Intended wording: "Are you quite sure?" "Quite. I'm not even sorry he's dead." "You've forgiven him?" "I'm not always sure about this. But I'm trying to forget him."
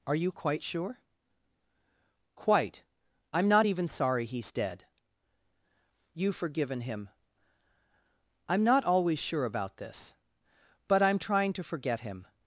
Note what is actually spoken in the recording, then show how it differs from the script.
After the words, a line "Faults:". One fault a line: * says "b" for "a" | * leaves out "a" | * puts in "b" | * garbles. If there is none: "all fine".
"Are you quite sure?" "Quite. I'm not even sorry he's dead." "You've forgiven him?" "I'm not always sure about this. But I'm trying to forget him."
Faults:
all fine